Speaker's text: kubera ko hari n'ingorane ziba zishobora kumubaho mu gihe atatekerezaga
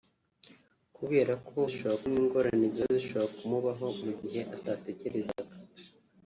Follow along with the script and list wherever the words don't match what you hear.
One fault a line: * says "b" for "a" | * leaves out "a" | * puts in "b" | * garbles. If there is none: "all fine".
* says "zishobora" for "hari"